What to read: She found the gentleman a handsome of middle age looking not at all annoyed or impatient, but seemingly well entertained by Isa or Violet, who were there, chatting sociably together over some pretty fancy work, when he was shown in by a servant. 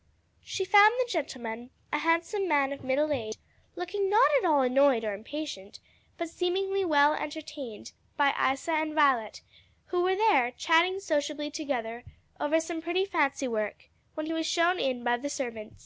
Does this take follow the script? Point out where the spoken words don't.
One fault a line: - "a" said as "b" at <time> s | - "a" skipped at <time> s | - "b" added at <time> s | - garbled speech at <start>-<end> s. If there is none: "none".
- "man" added at 2.5 s
- "or" said as "and" at 8.7 s
- "a" said as "the" at 15.2 s